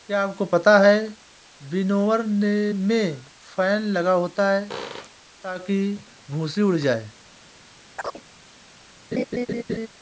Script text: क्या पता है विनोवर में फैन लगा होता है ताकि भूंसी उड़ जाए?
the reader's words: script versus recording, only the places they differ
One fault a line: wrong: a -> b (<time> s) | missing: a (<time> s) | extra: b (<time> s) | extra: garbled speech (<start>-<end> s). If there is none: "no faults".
extra: आपको (0.2 s)